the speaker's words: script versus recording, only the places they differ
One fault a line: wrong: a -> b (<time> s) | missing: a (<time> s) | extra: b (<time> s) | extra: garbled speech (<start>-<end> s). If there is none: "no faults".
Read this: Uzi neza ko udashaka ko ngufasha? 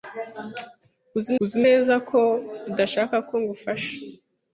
extra: uzi (1.4 s)